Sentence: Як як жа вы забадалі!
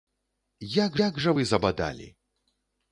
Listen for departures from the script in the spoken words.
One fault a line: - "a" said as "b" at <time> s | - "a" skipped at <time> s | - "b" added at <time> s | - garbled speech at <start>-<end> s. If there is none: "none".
none